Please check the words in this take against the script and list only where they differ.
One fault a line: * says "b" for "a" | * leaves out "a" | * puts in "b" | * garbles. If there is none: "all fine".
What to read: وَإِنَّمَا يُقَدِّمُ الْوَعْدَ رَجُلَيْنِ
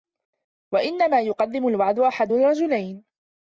* puts in "أَحَدُ"